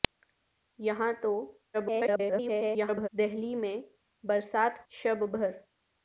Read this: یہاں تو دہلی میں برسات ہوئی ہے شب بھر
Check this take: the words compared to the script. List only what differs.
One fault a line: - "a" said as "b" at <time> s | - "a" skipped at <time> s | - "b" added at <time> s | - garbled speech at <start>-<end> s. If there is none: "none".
- garbled speech at 1.7-3.1 s
- "ہوئی ہے" skipped at 4.8 s